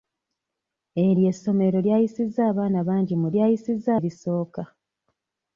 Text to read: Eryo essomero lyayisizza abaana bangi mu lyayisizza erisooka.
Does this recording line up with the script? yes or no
yes